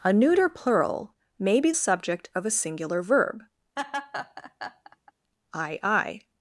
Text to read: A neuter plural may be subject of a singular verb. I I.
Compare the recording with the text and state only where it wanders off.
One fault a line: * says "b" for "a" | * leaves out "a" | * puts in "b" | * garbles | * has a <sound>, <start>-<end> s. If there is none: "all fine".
* has a laugh, 3.8-5.1 s